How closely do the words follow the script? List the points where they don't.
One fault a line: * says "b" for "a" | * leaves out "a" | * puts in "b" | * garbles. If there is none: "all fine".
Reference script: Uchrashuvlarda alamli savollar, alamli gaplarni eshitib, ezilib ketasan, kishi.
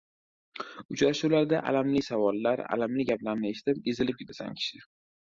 all fine